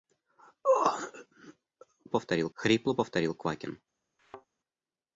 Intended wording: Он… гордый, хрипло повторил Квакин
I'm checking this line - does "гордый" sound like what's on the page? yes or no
no